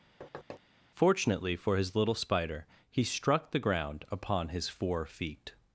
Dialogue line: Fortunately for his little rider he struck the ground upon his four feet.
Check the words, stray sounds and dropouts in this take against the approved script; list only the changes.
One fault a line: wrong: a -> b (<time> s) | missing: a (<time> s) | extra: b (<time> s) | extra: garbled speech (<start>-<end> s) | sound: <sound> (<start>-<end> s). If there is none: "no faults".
sound: thud (0.2-0.6 s)
wrong: rider -> spider (2.1 s)